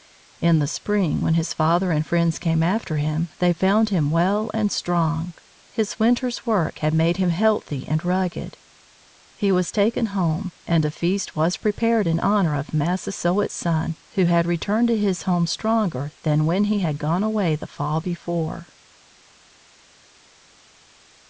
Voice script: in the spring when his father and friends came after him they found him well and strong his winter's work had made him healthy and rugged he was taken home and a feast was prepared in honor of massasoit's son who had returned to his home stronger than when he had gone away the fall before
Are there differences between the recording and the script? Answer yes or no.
no